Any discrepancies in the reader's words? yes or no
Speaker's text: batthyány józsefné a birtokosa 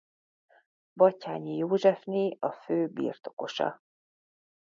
yes